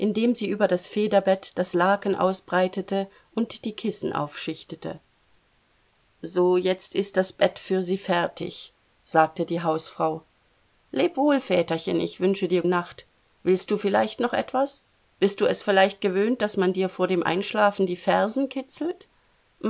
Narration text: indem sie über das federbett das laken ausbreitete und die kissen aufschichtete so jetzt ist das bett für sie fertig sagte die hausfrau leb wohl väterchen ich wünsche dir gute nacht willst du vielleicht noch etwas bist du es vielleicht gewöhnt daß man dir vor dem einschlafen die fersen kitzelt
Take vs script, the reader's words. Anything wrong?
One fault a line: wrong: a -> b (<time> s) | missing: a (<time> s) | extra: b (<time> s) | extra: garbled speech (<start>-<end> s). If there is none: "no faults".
missing: gute (12.6 s)